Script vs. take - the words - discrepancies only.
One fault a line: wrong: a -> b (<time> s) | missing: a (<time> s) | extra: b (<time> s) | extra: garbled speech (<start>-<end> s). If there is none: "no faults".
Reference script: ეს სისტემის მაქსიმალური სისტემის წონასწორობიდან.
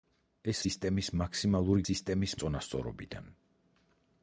no faults